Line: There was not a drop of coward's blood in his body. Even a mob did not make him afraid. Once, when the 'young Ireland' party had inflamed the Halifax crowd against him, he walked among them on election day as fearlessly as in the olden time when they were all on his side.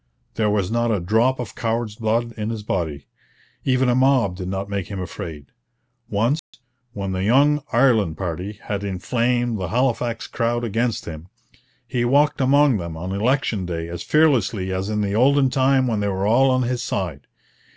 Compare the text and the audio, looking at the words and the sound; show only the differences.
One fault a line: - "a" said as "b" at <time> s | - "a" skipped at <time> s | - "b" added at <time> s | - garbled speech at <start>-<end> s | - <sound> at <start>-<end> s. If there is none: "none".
- dropout at 6.4-6.5 s